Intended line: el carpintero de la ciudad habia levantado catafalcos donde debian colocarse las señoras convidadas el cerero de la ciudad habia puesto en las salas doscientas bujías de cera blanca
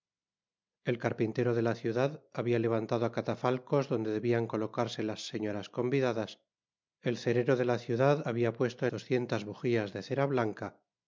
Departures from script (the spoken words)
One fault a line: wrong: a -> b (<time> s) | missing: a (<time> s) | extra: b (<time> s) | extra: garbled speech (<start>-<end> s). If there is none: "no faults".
missing: en las salas (8.9 s)